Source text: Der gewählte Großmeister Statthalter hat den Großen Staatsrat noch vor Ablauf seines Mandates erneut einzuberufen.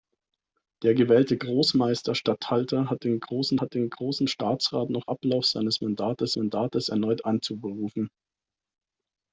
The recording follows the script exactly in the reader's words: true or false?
false